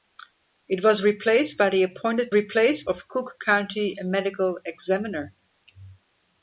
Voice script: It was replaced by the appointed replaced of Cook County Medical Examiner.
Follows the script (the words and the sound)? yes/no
yes